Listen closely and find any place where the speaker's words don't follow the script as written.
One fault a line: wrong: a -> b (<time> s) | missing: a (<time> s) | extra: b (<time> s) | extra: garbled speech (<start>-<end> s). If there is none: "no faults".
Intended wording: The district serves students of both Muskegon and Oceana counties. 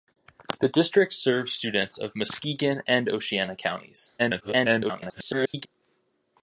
missing: both (2.1 s)
extra: garbled speech (4.2-5.7 s)